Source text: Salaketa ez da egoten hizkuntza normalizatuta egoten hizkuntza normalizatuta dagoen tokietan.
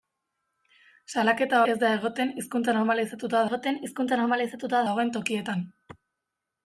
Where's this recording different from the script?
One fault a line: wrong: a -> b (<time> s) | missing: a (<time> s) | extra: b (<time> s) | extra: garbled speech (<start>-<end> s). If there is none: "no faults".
no faults